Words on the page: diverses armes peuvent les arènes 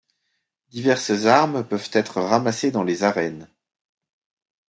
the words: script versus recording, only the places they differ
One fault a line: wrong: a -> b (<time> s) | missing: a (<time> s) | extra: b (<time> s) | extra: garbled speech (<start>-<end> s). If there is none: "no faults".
extra: être ramassées dans (1.9 s)